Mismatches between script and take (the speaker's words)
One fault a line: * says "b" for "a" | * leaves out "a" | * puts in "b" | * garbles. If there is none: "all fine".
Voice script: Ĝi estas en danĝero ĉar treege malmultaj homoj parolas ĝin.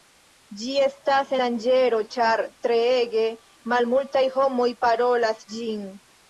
* leaves out "en"